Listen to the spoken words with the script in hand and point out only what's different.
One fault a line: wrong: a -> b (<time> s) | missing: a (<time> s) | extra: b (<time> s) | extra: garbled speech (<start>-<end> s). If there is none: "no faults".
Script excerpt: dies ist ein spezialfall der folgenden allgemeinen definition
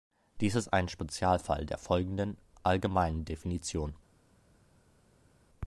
no faults